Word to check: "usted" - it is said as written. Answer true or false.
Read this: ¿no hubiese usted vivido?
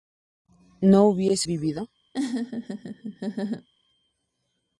false